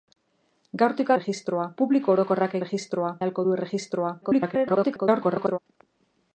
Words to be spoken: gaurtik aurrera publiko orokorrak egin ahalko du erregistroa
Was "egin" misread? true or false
true